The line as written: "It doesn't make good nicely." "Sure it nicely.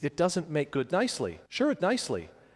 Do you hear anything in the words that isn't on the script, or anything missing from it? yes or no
no